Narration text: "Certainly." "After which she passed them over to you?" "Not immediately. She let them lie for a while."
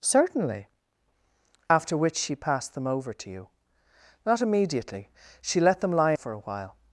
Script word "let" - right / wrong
right